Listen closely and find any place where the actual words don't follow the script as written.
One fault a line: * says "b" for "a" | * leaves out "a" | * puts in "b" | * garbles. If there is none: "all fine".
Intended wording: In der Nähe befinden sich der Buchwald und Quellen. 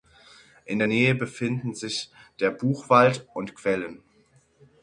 all fine